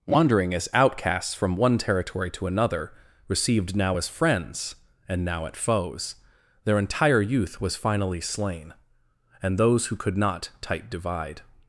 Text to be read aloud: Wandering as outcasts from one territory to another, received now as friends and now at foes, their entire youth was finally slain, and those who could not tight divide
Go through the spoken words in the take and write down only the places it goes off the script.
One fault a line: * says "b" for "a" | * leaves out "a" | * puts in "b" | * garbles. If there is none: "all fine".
all fine